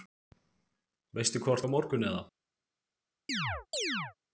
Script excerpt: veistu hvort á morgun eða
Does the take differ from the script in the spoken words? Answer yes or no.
no